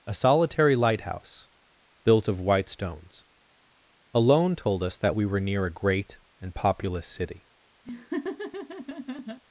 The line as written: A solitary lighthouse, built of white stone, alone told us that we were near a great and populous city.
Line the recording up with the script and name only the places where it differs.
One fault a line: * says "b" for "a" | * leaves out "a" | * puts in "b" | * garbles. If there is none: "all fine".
* says "stones" for "stone"